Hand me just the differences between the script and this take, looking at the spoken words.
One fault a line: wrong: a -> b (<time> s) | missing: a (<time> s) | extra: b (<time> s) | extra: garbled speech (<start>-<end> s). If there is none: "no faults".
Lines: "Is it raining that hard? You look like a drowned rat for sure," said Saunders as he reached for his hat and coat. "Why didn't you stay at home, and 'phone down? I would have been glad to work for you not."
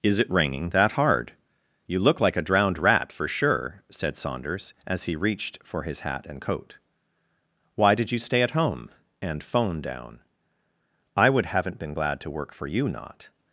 wrong: didn't -> did (7.9 s)
wrong: have -> haven't (11.5 s)